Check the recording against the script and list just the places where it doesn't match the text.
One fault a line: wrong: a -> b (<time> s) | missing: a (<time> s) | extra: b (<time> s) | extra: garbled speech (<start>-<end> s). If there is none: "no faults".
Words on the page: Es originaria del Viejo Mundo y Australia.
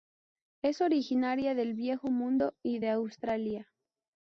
extra: de (2.8 s)